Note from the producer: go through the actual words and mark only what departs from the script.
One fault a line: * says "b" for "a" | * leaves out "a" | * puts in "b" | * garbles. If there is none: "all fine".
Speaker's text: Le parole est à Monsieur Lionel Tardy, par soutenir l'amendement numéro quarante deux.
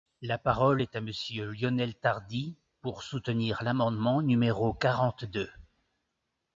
* says "La" for "Le"
* says "pour" for "par"